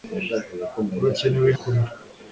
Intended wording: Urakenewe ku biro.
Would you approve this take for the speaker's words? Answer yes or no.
yes